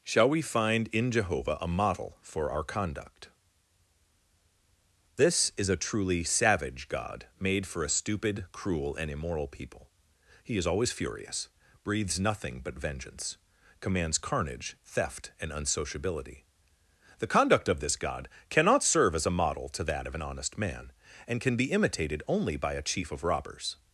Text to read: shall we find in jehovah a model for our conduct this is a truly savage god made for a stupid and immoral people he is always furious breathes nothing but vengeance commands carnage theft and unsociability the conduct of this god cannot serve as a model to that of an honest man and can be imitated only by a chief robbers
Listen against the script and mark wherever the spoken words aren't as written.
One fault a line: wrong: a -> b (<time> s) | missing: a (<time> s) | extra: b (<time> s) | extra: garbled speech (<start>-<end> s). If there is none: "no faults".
extra: cruel (8.5 s)
extra: of (23.1 s)